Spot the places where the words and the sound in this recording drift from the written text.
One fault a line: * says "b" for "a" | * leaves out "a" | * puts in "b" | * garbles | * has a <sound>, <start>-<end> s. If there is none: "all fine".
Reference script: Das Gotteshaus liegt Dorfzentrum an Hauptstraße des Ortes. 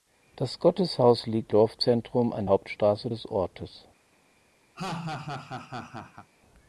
* has a laugh, 4.7-6.3 s